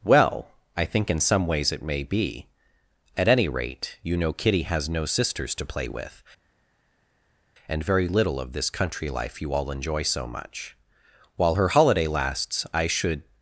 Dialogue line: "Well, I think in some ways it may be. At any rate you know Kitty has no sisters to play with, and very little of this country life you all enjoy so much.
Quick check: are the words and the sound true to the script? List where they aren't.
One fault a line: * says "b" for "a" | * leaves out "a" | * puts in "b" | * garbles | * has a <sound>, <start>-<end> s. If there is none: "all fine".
* puts in "While her holiday lasts I should"